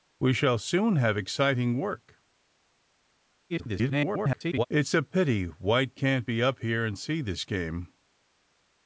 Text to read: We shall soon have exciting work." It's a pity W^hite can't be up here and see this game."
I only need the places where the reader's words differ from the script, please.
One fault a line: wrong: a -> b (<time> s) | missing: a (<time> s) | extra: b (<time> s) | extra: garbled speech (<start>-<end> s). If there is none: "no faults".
extra: garbled speech (3.5-4.7 s)